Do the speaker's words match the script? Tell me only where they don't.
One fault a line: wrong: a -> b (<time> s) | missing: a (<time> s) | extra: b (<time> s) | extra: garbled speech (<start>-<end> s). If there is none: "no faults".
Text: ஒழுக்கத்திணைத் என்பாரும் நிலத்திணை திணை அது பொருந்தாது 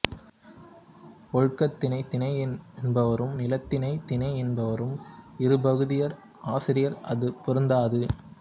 extra: திணை (2.1 s)
extra: என்பாரும் இருபகுதியர் ஆசிரியர் (4.4 s)